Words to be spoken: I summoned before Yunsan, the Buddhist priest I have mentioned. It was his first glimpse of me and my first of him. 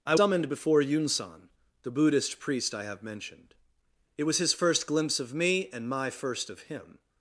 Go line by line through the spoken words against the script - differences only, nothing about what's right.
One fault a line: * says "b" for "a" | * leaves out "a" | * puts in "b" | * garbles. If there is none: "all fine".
all fine